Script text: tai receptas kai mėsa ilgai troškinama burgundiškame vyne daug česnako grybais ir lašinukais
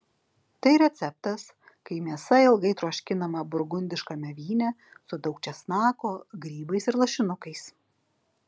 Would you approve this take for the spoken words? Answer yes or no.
no